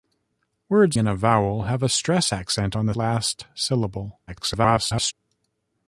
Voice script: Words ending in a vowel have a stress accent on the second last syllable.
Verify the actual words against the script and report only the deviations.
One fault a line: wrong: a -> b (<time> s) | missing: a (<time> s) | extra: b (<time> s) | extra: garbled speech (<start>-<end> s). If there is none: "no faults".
missing: ending (1.0 s)
missing: second (2.9 s)
extra: garbled speech (4.3-5.1 s)